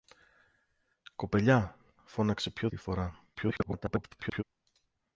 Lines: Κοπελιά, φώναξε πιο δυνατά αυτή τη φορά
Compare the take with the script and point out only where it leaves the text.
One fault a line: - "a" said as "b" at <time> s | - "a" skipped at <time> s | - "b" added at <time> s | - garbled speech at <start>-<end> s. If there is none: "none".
- "δυνατά αυτή" skipped at 2.7 s
- garbled speech at 3.3-4.4 s